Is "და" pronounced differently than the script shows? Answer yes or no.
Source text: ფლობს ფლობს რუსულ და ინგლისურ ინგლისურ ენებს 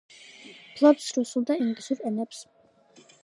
no